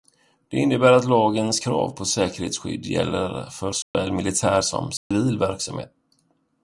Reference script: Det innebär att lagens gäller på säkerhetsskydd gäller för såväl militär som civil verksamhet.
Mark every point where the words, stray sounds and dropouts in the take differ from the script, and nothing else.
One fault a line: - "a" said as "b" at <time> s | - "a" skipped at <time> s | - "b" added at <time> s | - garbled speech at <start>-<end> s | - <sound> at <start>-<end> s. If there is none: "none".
- "gäller" said as "krav" at 1.6 s
- dropout at 3.8-3.9 s
- dropout at 5.0-5.1 s